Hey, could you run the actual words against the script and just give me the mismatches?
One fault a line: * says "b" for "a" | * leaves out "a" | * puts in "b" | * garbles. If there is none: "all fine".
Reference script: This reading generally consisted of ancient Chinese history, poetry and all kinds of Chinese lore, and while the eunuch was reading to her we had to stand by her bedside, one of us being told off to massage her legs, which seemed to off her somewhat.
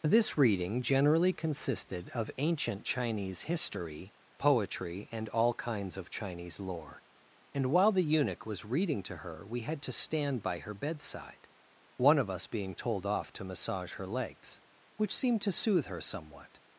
* says "soothe" for "off"